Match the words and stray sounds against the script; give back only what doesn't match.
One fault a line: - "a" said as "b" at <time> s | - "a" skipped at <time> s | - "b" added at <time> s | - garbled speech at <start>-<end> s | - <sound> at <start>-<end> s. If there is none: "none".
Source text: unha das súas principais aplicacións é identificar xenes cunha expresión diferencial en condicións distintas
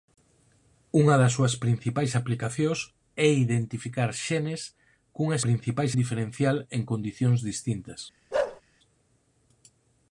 - "expresión" said as "principais" at 5.4 s
- bark at 8.3-8.6 s